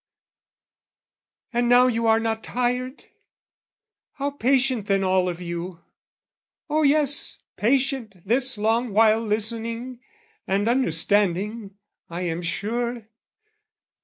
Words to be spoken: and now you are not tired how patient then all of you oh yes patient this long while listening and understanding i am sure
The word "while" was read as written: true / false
true